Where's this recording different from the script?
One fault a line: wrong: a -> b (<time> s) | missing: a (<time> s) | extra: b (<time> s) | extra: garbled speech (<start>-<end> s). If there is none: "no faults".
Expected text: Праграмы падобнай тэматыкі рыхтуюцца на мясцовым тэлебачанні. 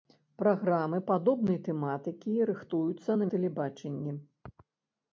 missing: мясцовым (3.3 s)